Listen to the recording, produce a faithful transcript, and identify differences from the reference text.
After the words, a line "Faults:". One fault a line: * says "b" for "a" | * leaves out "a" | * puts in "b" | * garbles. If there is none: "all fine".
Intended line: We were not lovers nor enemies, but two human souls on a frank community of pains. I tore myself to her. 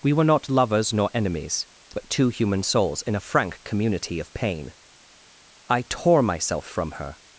We were not lovers nor enemies, but two human souls in a frank community of pain. I tore myself from her.
Faults:
* says "in" for "on"
* says "pain" for "pains"
* says "from" for "to"